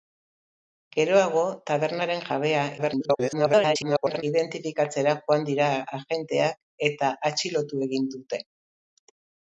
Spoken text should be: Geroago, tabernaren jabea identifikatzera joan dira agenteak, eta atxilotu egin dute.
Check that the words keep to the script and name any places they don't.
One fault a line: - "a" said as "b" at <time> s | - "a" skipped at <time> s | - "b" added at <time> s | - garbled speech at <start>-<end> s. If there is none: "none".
- garbled speech at 2.8-4.2 s